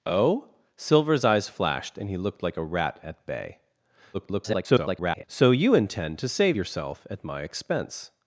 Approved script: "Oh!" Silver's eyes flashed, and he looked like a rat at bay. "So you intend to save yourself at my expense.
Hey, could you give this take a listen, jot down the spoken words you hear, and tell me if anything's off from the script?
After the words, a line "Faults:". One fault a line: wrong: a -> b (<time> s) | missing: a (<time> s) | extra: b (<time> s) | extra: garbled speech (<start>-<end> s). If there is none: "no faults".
"Oh!" Silver's eyes flashed, and he looked like a rat at bay. [garbled] "So you intend to save yourself at my expense.
Faults:
extra: garbled speech (4.1-5.2 s)